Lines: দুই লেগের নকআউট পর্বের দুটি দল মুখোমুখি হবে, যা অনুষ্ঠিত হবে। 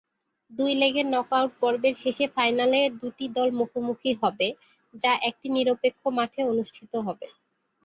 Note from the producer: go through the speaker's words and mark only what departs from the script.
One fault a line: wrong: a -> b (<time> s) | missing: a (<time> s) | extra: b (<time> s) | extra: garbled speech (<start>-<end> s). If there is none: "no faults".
extra: শেষে ফাইনালে (2.0 s)
extra: একটি নিরপেক্ষ মাঠে (5.3 s)